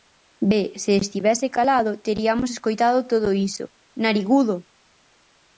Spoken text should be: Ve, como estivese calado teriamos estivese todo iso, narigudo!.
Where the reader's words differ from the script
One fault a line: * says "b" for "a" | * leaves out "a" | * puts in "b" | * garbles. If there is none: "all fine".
* says "se" for "como"
* says "escoitado" for "estivese"